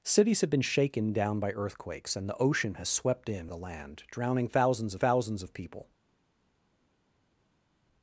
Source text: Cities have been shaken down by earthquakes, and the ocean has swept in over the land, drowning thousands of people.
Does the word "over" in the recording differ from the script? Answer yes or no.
yes